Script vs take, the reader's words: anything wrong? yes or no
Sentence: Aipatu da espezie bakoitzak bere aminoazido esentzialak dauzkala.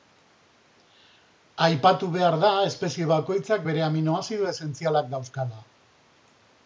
yes